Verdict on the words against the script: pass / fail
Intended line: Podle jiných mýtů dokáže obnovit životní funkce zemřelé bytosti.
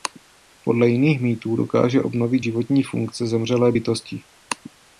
pass